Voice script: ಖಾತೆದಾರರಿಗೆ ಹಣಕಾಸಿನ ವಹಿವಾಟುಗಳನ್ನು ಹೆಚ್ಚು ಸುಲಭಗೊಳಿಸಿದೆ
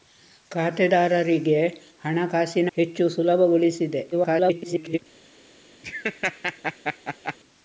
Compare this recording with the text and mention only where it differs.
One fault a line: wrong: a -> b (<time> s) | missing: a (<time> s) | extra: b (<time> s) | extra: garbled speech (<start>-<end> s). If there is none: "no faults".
missing: ವಹಿವಾಟುಗಳನ್ನು (2.7 s)
extra: garbled speech (4.1-5.0 s)